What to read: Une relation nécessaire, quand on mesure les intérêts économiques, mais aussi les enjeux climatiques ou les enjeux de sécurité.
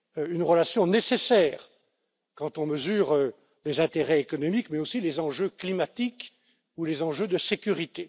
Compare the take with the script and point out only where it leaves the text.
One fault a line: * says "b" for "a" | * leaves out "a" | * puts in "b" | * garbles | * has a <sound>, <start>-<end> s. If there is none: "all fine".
all fine